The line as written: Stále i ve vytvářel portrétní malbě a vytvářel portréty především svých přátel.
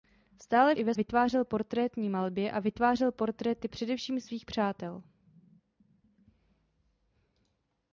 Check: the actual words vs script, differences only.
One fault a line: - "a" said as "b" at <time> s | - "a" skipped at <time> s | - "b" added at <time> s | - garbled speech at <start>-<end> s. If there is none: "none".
none